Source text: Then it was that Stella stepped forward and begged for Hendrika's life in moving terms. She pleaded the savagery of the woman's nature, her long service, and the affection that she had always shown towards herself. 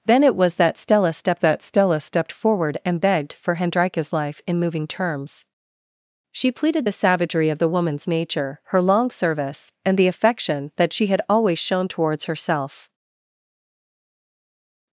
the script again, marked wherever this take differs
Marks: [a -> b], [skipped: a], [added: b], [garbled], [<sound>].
Then it was that Stella stepped [added: that Stella stepped] forward and begged for Hendrika's life in moving terms. She pleaded the savagery of the woman's nature, her long service, and the affection that she had always shown towards herself.